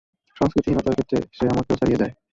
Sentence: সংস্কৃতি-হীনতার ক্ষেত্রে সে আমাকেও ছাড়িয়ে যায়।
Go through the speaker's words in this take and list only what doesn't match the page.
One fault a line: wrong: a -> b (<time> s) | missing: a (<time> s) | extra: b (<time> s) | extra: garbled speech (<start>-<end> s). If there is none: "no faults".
no faults